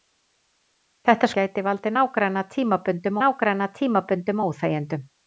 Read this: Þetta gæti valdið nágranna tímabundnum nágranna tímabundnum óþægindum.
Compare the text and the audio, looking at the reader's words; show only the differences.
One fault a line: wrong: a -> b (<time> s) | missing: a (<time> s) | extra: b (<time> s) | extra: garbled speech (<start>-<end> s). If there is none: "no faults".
no faults